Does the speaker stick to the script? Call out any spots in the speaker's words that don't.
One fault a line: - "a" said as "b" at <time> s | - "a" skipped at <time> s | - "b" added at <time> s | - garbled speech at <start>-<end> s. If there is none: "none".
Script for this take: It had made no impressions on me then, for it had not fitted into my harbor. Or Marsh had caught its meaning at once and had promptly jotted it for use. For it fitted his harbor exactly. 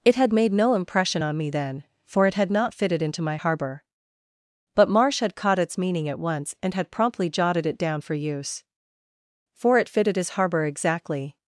- "impressions" said as "impression" at 0.7 s
- "Or" said as "But" at 4.8 s
- "down" added at 7.8 s